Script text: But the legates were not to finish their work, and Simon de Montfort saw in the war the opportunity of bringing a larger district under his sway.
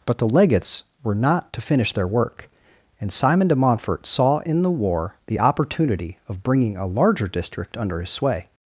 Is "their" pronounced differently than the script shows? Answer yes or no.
no